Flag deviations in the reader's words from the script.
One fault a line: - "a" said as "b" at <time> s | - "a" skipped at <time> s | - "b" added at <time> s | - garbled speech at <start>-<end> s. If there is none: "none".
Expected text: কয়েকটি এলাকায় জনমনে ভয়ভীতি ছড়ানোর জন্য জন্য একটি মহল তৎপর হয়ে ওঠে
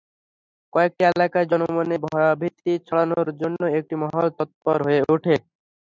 - "জন্য" skipped at 3.6 s